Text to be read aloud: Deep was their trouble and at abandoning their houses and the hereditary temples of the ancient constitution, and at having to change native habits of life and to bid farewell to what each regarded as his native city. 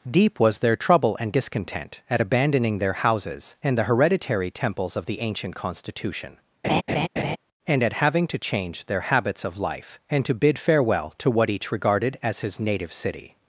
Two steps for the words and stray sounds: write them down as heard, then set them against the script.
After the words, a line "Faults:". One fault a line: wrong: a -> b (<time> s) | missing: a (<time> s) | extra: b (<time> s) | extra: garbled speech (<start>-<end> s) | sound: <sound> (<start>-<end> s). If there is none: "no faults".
Deep was their trouble and discontent at abandoning their houses and the hereditary temples of the ancient constitution, and at having to change their habits of life and to bid farewell to what each regarded as his native city.
Faults:
extra: discontent (1.3 s)
sound: laugh (6.6-7.4 s)
wrong: native -> their (8.9 s)